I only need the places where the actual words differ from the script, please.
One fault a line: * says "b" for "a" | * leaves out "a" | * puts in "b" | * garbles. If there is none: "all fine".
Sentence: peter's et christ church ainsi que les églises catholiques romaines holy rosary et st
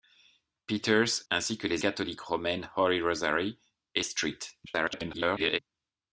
* leaves out "et christ church"
* leaves out "églises"
* garbles